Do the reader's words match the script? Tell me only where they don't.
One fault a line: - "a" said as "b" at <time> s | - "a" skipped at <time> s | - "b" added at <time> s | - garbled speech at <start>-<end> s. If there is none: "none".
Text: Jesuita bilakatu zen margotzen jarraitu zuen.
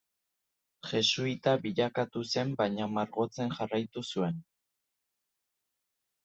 - "baina" added at 2.6 s